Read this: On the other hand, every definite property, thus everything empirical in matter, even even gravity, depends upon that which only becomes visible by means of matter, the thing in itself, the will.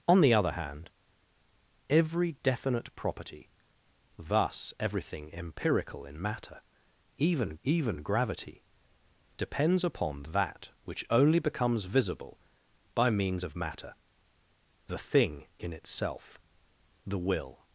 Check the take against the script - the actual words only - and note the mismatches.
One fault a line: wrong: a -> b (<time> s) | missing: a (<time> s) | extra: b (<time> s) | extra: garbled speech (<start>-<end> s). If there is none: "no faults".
no faults